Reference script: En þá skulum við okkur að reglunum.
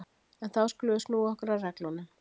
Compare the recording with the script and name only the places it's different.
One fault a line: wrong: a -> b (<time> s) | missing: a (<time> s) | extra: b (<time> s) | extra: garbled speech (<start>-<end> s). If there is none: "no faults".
extra: snúa (1.1 s)